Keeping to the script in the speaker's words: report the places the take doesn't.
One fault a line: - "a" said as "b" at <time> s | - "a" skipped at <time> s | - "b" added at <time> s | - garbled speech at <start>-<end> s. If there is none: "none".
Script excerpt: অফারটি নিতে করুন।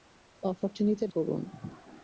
none